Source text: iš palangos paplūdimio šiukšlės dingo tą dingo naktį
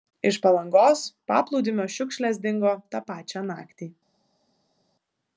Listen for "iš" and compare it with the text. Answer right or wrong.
right